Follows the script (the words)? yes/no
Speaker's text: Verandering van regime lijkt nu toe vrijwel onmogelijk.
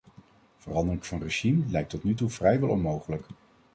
no